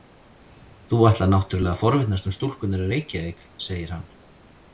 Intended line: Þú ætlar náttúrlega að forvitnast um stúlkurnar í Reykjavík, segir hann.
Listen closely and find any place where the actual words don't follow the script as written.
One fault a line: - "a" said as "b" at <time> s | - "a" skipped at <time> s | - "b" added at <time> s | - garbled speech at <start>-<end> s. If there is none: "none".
none